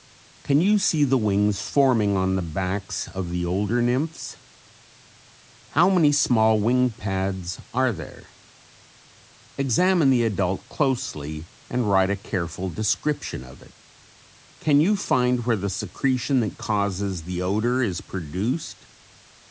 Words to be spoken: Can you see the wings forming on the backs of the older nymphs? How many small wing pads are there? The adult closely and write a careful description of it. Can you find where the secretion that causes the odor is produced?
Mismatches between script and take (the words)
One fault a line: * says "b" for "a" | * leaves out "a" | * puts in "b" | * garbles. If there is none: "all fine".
* puts in "Examine"